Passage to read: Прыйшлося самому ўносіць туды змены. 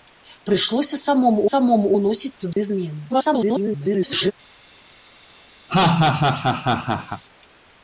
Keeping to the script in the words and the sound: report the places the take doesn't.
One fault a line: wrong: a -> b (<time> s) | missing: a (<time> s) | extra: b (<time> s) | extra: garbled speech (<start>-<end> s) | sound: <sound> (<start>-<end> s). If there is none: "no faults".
extra: самому (1.5 s)
sound: dropout (2.5-2.6 s)
extra: garbled speech (3.1-4.3 s)
sound: laugh (5.7-7.2 s)